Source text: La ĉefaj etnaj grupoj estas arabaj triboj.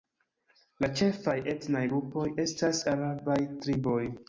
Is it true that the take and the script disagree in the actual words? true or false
false